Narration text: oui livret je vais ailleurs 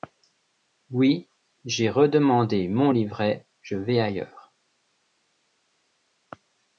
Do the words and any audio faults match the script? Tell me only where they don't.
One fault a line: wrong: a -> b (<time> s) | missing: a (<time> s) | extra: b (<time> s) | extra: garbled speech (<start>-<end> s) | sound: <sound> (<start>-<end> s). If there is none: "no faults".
extra: j'ai redemandé mon (1.6 s)